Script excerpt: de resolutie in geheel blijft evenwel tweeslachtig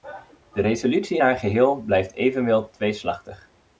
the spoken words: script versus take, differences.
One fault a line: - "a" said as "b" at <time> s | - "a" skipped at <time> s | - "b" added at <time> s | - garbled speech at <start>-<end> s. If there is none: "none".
- "haar" added at 1.2 s